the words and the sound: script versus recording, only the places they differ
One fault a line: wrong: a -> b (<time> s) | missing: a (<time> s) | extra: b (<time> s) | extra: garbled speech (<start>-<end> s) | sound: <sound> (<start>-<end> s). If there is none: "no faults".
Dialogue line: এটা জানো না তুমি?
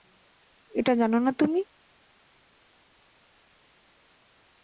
no faults